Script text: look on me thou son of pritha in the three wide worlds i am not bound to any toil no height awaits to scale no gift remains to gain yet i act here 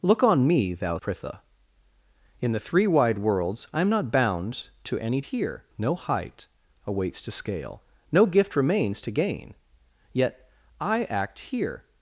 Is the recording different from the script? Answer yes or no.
yes